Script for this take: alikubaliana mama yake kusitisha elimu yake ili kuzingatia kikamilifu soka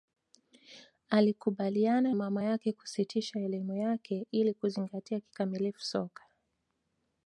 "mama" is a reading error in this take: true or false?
false